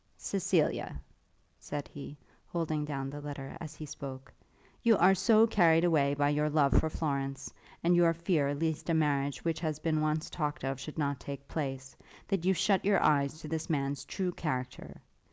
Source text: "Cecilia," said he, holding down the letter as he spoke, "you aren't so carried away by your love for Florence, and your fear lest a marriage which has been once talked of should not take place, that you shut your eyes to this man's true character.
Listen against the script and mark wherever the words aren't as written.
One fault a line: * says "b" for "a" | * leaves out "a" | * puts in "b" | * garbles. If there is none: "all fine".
* says "are" for "aren't"